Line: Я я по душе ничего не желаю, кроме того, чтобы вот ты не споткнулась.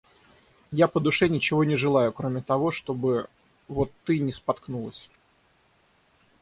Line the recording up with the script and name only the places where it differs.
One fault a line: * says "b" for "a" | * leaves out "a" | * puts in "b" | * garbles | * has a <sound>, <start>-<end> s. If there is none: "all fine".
* leaves out "я"